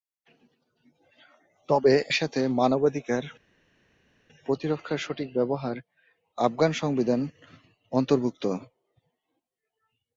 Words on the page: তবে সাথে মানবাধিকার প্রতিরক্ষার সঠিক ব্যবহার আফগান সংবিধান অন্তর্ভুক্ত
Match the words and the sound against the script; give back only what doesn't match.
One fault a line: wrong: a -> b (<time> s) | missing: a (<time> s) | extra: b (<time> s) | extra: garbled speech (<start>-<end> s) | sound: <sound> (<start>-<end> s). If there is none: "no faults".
no faults